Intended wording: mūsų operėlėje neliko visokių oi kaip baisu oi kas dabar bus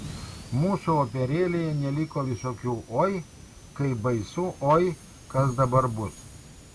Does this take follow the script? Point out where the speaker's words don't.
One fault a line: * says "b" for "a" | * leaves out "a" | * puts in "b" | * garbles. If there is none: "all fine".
all fine